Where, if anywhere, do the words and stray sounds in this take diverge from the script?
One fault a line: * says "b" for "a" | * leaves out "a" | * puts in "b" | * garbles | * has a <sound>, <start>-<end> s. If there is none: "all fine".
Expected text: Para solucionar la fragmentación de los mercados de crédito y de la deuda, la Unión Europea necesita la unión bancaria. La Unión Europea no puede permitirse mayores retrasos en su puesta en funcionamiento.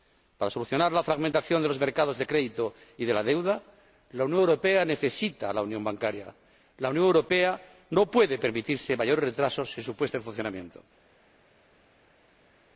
all fine